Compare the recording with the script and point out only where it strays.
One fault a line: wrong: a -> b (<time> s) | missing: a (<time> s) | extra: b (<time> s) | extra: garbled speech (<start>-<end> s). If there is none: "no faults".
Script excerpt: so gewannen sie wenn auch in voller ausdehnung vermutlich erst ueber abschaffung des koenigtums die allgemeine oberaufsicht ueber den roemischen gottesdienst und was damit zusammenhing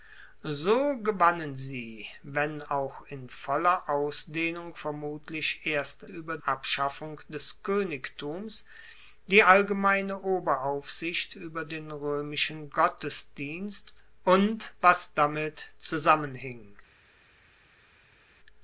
no faults